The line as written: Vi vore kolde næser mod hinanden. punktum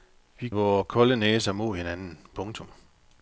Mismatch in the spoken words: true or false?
false